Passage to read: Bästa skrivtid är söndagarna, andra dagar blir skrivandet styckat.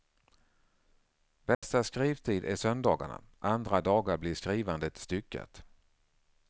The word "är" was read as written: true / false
true